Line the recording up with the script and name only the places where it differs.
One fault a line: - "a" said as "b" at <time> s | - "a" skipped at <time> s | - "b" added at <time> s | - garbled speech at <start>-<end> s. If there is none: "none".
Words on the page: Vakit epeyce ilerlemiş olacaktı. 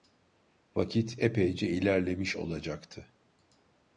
none